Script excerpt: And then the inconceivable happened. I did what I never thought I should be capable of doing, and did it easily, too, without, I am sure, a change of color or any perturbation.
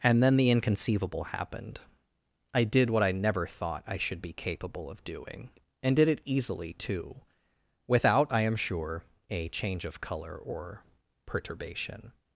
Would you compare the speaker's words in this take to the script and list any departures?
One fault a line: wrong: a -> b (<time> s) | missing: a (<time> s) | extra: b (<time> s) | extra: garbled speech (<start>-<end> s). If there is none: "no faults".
missing: any (10.8 s)